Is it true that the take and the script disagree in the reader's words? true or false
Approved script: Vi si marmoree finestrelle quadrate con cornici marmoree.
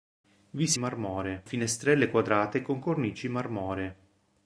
false